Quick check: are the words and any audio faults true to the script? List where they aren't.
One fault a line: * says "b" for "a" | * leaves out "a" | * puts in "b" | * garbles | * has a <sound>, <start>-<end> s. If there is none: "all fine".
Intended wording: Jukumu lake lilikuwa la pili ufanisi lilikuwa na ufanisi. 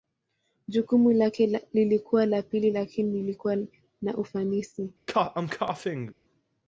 * says "lakini" for "ufanisi"
* has a cough, 5.1-6.1 s